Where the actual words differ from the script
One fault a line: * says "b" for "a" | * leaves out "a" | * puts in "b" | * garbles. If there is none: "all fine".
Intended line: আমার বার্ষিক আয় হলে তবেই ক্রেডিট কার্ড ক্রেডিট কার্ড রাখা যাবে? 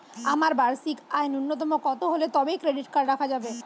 * puts in "ন্যুনতম কত"
* leaves out "ক্রেডিট কার্ড"